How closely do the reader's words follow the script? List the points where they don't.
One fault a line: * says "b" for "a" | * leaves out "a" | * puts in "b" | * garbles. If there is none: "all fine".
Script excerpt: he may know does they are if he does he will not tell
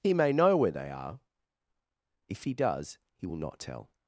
* says "where" for "does"